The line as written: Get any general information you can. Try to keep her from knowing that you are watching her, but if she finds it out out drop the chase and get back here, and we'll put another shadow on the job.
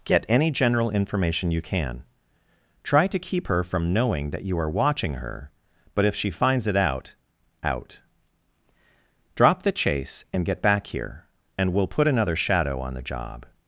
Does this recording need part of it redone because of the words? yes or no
no